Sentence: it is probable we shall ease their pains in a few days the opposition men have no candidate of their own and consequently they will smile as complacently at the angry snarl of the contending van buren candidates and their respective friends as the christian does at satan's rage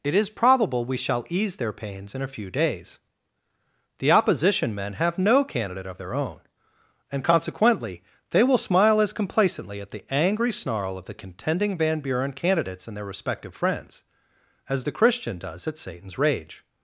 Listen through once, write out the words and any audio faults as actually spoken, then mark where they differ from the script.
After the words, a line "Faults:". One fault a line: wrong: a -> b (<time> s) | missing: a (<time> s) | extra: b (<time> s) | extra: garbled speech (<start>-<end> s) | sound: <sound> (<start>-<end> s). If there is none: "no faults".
it is probable we shall ease their pains in a few days the opposition men have no candidate of their own and consequently they will smile as complacently at the angry snarl of the contending van buren candidates and their respective friends as the christian does at satan's rage
Faults:
no faults